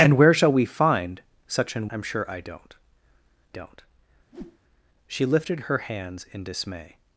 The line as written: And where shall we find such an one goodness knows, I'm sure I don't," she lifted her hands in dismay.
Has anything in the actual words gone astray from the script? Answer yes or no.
yes